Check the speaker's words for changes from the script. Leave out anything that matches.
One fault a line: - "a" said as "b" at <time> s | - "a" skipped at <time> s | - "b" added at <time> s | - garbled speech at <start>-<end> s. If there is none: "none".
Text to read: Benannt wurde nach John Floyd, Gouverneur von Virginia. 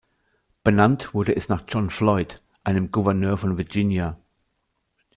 - "es" added at 1.4 s
- "einem" added at 2.6 s